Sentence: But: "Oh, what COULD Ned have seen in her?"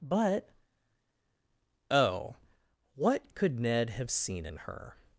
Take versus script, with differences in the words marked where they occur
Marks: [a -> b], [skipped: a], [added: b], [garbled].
But: "Oh, what COULD Ned have seen in her?"